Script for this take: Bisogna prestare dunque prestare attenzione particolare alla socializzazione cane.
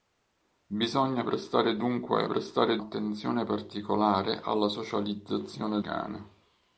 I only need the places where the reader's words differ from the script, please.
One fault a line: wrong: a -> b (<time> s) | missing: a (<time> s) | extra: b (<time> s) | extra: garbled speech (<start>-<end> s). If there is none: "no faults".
no faults